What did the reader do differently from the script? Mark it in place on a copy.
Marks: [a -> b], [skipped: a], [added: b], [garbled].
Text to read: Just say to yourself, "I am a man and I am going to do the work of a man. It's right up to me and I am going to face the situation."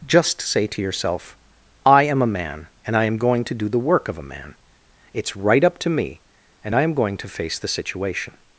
Just say to yourself, "I am a man and I am going to do the work of a man. It's right up to me and I am going to face the situation."